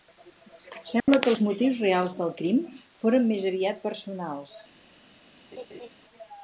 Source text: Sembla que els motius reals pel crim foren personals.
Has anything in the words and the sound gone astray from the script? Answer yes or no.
yes